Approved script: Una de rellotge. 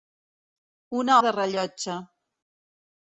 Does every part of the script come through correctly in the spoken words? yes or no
yes